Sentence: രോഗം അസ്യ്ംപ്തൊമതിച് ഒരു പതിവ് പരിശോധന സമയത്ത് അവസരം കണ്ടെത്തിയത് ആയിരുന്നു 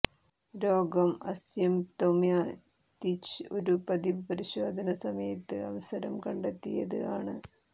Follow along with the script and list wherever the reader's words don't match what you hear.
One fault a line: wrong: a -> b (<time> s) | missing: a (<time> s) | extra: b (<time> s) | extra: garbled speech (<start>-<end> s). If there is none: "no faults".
wrong: ആയിരുന്നു -> ആണ് (7.2 s)